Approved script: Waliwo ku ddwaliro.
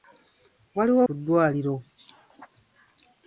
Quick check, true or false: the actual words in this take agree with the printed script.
true